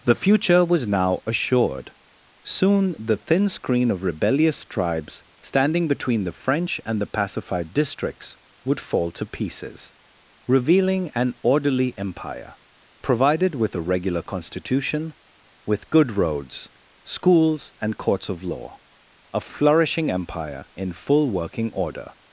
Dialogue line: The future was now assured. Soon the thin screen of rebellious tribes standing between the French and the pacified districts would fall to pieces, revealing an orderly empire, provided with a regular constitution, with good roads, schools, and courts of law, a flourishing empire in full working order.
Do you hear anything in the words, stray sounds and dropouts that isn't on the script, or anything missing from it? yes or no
no